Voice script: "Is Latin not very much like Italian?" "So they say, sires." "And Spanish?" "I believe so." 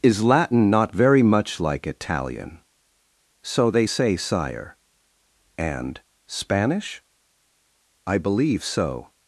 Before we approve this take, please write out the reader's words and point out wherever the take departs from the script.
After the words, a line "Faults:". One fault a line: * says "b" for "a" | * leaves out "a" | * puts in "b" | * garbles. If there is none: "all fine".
"Is Latin not very much like Italian?" "So they say, sire." "And Spanish?" "I believe so."
Faults:
* says "sire" for "sires"